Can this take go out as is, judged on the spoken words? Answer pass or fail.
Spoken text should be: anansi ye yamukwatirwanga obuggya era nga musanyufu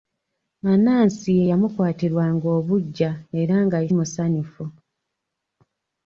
pass